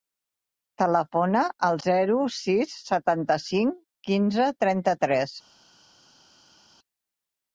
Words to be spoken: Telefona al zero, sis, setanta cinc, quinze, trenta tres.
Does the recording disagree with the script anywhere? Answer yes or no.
no